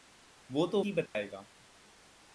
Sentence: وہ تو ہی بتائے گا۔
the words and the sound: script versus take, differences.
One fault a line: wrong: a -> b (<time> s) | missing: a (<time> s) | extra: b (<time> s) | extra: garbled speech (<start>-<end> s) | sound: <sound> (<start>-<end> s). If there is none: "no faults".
sound: dropout (1.1-1.1 s)